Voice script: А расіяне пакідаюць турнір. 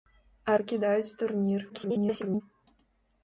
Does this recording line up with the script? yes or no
no